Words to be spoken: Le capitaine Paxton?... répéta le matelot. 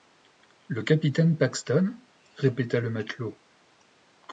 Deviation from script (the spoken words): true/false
false